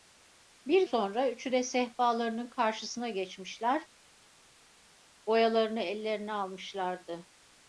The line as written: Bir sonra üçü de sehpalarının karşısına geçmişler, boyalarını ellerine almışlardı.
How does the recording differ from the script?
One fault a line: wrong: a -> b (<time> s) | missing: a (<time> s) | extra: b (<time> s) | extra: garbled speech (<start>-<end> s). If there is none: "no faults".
no faults